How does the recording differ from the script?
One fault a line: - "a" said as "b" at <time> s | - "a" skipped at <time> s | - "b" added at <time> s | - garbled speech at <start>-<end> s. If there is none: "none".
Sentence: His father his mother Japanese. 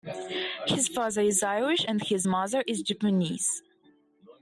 - "is Irish and" added at 1.2 s
- "is" added at 2.7 s